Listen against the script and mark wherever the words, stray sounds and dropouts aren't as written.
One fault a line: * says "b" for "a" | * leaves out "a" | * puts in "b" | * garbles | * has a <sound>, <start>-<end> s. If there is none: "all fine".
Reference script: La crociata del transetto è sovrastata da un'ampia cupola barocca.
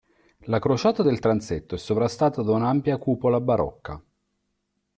all fine